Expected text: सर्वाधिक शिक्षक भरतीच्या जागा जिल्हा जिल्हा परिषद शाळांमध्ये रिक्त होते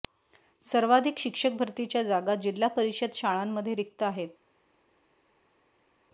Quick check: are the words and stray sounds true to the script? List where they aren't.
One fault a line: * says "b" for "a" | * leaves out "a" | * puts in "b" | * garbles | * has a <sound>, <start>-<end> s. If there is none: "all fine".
* leaves out "जिल्हा"
* says "आहेत" for "होते"